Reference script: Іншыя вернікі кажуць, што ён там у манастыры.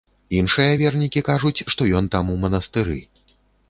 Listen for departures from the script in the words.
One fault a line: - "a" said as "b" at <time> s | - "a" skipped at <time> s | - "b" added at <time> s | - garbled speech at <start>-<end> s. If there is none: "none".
none